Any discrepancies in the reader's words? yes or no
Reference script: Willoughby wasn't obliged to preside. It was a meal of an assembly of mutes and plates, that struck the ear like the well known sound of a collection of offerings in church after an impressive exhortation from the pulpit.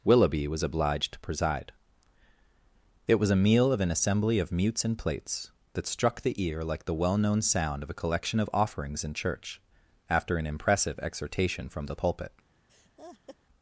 yes